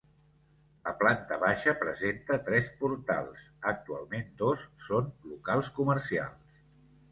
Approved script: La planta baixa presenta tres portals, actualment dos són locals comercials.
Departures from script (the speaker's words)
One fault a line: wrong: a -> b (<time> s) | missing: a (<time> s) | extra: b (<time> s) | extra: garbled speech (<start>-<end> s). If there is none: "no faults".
no faults